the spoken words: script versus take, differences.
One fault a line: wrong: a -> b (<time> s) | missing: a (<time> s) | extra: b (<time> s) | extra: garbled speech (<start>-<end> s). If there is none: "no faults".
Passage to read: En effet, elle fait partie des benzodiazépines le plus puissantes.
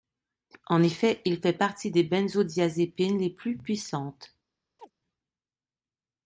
wrong: elle -> il (1.2 s)
wrong: le -> les (3.2 s)